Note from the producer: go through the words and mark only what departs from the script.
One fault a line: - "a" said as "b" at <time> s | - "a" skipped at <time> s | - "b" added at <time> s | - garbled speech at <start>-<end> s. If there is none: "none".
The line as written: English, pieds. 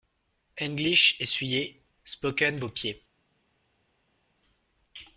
- "essuyez spoken vos" added at 1.2 s